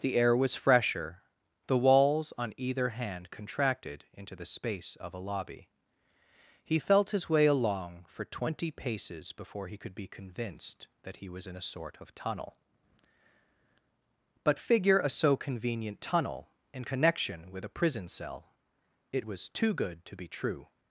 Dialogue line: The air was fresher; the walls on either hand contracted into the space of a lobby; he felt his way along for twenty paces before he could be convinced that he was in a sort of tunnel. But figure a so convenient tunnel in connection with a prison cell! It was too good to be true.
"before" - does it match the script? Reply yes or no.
yes